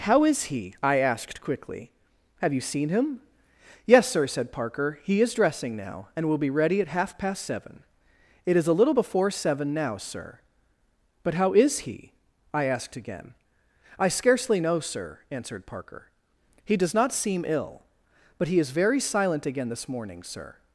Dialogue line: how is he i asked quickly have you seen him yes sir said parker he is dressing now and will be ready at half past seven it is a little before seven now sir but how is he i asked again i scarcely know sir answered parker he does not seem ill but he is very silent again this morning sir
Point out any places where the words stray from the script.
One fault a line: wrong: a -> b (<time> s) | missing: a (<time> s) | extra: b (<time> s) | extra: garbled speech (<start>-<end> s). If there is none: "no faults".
no faults